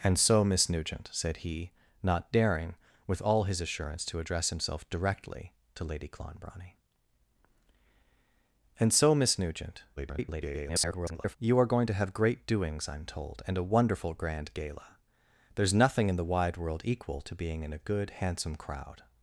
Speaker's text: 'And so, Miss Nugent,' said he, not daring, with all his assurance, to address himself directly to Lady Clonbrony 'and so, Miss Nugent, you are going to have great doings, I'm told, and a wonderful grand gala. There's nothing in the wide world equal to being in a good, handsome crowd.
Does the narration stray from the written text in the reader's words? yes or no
yes